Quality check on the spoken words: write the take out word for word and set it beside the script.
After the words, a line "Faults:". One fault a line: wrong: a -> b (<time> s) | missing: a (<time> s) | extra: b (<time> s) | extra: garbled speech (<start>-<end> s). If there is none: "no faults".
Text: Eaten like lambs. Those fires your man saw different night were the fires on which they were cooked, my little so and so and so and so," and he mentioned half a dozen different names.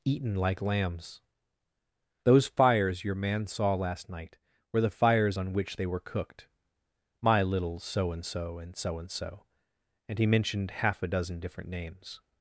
Eaten like lambs. Those fires your man saw last night were the fires on which they were cooked, my little so and so and so and so," and he mentioned half a dozen different names.
Faults:
wrong: different -> last (3.8 s)